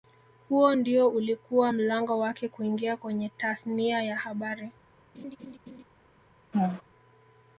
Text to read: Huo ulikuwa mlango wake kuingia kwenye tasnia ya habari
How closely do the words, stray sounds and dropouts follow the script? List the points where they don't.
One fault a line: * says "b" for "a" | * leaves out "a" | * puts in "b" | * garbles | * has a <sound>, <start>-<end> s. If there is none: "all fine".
* puts in "ndio"
* has a laugh, 5.1-5.8 s
* has a laugh, 6.5-6.8 s